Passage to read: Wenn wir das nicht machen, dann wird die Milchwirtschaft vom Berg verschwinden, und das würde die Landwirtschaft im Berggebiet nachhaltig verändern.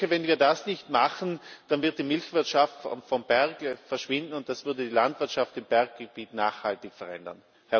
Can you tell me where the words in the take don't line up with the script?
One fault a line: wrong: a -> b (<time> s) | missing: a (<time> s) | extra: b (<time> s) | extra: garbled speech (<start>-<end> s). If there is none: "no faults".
no faults